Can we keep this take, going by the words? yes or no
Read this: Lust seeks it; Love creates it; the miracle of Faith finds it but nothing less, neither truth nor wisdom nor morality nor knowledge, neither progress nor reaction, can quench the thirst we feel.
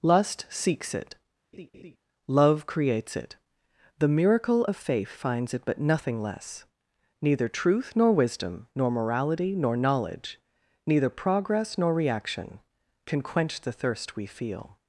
yes